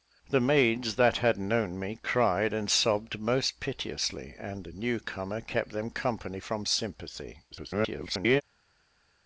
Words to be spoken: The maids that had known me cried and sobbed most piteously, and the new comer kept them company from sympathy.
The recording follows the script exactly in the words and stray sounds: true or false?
false